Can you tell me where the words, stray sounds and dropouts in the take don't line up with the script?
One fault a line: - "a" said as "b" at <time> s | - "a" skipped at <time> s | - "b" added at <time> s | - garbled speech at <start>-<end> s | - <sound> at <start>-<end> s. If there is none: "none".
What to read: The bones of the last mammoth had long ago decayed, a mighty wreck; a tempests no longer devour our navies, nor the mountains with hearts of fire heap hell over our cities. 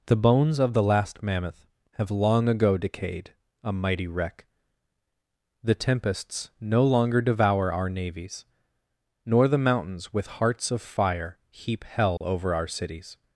- "had" said as "have" at 1.9 s
- "a" said as "the" at 5.6 s
- dropout at 12.2-12.2 s